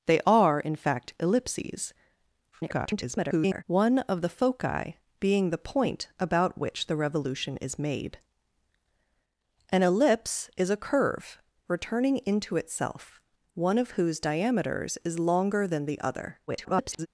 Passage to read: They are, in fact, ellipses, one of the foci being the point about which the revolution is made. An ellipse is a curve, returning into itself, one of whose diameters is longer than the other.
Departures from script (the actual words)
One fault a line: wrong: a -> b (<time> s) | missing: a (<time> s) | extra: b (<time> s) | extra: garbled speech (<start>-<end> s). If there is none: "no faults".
extra: garbled speech (2.5-3.6 s)
extra: garbled speech (16.5-17.1 s)